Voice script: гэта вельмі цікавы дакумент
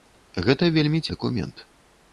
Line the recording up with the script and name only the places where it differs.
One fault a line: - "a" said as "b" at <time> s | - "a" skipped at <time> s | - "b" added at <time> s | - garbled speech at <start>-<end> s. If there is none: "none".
- "цікавы" skipped at 1.0 s